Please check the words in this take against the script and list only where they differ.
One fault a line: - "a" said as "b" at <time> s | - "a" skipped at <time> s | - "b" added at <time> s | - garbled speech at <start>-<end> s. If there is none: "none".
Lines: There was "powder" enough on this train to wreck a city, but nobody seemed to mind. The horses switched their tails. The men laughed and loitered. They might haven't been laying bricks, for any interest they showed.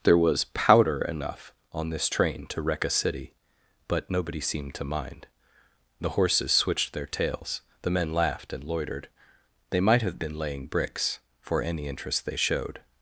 - "haven't" said as "have" at 10.0 s